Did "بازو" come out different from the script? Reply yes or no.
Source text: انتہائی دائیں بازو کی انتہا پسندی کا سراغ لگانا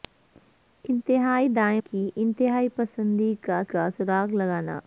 yes